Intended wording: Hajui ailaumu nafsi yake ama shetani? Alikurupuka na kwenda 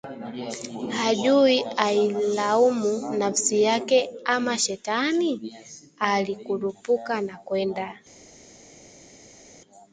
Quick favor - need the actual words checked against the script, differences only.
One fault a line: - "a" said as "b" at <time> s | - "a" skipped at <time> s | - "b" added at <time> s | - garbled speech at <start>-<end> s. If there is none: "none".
none